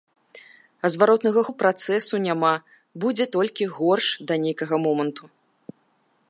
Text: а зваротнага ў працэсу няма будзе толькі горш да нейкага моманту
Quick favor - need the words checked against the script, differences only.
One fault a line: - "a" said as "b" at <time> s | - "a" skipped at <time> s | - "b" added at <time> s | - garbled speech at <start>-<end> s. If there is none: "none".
none